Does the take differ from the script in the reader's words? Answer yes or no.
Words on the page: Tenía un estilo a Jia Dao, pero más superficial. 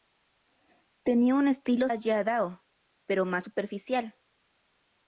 no